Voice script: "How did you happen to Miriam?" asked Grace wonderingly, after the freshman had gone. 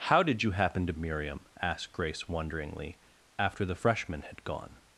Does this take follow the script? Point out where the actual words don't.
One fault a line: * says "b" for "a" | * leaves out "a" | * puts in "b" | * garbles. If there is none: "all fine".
all fine